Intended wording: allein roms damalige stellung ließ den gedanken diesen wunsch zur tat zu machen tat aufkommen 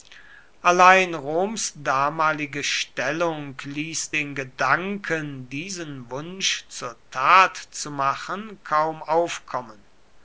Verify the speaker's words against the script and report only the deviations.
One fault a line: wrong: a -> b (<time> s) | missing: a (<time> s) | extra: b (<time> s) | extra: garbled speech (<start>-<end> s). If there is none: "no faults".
wrong: tat -> kaum (8.6 s)